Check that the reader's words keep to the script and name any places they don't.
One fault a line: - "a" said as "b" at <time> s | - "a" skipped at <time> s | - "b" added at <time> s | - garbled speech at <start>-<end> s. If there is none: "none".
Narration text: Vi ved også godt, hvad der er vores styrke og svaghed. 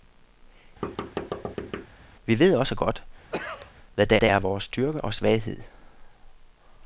- "der" added at 4.2 s